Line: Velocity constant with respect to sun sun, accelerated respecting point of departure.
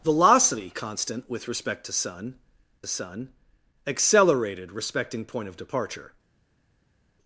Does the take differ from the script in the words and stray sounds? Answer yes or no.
no